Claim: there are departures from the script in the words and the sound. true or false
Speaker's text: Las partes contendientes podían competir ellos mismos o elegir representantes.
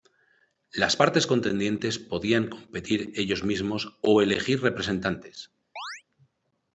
true